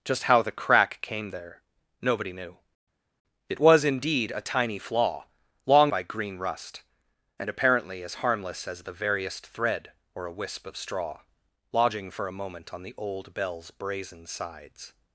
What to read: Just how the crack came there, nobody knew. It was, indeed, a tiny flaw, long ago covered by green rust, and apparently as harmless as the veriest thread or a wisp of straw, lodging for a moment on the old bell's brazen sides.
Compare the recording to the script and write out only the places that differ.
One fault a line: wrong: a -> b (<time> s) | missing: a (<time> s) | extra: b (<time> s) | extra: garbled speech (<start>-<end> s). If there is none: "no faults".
missing: ago covered (5.9 s)